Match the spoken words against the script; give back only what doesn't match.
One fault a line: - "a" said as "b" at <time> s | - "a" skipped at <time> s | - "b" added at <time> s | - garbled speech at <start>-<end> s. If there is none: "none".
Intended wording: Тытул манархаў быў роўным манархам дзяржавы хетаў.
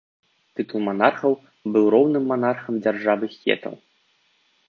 none